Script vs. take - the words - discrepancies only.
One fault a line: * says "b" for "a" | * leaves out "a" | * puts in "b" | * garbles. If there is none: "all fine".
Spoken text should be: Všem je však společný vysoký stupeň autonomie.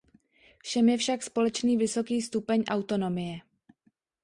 all fine